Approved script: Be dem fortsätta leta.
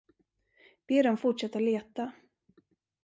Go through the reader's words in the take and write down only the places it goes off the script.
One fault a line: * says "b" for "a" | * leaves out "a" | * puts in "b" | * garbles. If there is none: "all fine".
all fine